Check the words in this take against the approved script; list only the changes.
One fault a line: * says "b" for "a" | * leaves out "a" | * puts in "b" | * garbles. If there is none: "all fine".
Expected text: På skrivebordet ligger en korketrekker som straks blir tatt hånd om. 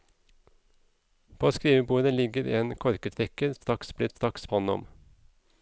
* leaves out "som"
* says "straks" for "tatt"